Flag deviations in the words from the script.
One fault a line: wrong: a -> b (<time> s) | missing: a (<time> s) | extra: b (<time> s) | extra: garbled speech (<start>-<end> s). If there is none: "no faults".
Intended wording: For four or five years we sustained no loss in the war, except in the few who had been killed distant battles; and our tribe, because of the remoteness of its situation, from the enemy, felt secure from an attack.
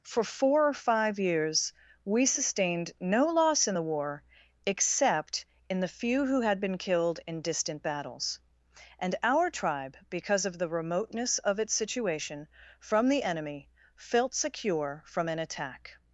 extra: in (7.3 s)